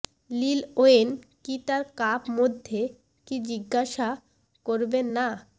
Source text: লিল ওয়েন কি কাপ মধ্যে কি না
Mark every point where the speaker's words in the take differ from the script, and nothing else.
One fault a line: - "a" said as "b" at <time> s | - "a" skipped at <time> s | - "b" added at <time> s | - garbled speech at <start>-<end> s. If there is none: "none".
- "তার" added at 1.7 s
- "জিজ্ঞাসা করবেন" added at 3.5 s